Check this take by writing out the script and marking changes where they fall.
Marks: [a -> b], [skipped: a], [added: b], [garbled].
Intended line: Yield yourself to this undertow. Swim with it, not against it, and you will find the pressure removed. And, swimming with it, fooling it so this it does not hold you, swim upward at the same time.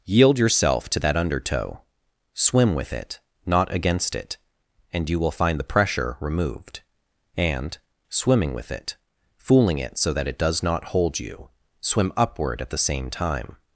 Yield yourself to [this -> that] undertow. Swim with it, not against it, and you will find the pressure removed. And, swimming with it, fooling it so [this -> that] it does not hold you, swim upward at the same time.